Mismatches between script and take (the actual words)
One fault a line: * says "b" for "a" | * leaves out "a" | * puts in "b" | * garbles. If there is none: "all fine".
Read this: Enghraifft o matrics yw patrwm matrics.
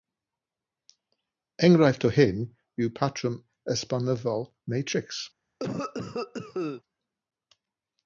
* says "hyn" for "matrics"
* puts in "esbonyddol"